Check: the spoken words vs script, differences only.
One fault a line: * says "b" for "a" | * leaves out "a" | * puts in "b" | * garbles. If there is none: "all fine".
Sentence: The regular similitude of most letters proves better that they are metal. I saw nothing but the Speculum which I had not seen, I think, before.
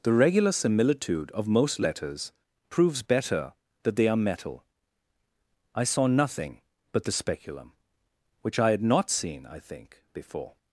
all fine